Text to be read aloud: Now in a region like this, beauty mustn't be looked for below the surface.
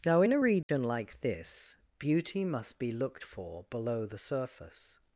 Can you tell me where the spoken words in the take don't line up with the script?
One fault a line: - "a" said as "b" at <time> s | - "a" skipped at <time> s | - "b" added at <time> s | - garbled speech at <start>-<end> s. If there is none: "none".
- "mustn't" said as "must" at 2.4 s